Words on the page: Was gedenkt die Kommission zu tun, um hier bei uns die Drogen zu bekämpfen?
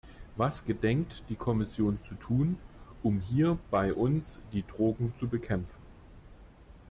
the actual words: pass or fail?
pass